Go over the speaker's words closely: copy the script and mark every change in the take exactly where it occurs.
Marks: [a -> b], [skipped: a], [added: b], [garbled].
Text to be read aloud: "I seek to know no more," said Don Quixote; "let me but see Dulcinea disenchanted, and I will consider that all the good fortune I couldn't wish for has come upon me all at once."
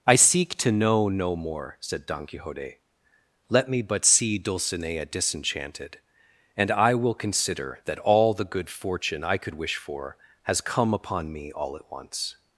"I seek to know no more," said Don Quixote; "let me but see Dulcinea disenchanted, and I will consider that all the good fortune I [couldn't -> could] wish for has come upon me all at once."